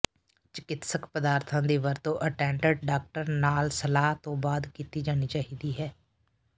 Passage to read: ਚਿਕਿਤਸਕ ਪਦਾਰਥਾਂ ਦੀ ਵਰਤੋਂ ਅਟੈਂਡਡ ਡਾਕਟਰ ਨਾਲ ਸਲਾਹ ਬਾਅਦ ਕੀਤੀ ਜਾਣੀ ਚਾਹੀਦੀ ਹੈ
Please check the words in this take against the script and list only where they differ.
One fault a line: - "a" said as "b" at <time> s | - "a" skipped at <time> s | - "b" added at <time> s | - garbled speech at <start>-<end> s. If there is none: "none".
- "ਤੋਂ" added at 4.2 s